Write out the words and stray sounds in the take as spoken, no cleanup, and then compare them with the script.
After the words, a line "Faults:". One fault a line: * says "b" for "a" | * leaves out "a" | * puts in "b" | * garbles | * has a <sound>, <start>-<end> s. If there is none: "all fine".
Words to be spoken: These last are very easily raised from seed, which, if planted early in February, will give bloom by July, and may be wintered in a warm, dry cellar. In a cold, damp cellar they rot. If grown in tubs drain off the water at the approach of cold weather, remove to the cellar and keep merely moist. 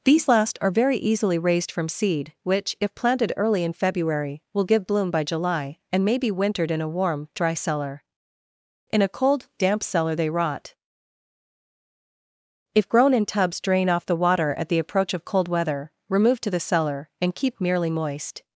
These last are very easily raised from seed, which, if planted early in February, will give bloom by July, and may be wintered in a warm, dry cellar. In a cold, damp cellar they rot. If grown in tubs drain off the water at the approach of cold weather, remove to the cellar and keep merely moist.
Faults:
all fine